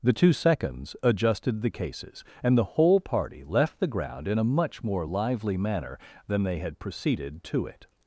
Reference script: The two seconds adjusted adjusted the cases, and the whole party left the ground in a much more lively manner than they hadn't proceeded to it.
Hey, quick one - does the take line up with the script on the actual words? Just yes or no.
no